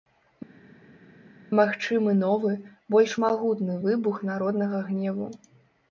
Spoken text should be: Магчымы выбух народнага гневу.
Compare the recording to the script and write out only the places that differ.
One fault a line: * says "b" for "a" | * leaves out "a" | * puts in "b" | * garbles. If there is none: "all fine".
* puts in "новы больш магутны"